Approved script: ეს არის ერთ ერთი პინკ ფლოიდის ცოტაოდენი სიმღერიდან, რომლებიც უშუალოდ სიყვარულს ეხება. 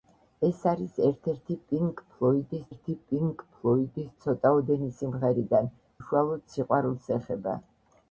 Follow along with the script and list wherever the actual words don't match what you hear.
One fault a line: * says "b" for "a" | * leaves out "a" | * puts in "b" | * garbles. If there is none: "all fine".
* puts in "ერთი პინკ ფლოიდის"
* leaves out "რომლებიც"